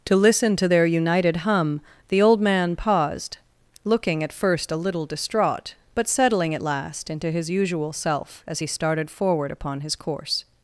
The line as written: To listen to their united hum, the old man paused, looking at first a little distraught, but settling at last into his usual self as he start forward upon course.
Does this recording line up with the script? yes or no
no